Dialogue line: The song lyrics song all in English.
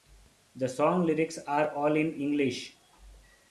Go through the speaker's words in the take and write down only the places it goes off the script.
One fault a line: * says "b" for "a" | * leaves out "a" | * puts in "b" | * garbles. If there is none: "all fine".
* says "are" for "song"